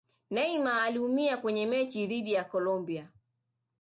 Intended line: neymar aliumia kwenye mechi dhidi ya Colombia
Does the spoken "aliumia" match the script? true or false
true